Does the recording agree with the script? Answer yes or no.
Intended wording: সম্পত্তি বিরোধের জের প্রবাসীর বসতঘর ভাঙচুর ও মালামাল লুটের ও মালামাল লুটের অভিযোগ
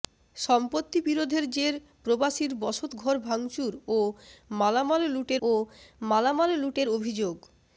yes